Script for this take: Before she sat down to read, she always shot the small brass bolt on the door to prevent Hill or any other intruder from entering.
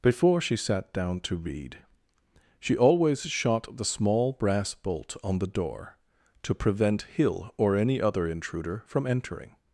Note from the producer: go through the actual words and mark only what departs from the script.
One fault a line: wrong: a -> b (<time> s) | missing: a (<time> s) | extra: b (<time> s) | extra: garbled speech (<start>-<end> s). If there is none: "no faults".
no faults